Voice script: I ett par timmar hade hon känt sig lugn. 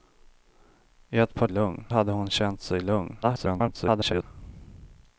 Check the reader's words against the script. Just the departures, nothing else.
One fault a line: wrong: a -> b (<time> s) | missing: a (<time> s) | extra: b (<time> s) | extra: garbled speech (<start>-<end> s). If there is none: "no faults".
wrong: timmar -> lugn (1.5 s)
extra: garbled speech (3.2-4.2 s)